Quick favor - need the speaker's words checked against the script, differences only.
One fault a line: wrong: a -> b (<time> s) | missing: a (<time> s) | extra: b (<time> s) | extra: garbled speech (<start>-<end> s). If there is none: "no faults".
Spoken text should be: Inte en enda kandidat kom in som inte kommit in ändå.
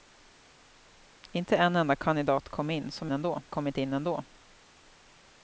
wrong: inte -> ändå (3.1 s)